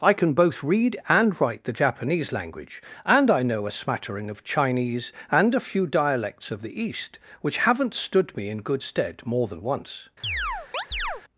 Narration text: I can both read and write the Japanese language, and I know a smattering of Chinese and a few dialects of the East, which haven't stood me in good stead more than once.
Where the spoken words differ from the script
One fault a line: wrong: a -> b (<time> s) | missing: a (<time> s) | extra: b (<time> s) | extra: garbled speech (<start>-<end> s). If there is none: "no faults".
no faults